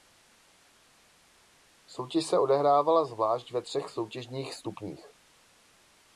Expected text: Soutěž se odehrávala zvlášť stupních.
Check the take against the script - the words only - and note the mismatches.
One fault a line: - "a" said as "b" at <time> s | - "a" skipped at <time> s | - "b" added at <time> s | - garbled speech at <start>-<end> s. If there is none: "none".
- "ve třech soutěžních" added at 3.5 s